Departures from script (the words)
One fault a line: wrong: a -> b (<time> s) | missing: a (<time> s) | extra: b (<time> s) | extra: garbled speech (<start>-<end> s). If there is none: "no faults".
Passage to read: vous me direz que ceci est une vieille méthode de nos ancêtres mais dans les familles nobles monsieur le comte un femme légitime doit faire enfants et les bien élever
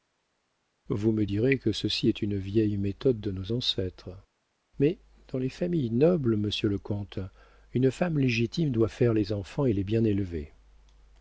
wrong: un -> une (7.7 s)
extra: les (9.1 s)